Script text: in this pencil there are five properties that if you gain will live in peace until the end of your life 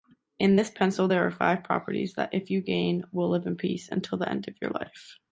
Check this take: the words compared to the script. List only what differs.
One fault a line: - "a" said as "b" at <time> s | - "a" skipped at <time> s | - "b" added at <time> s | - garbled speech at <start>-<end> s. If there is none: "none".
none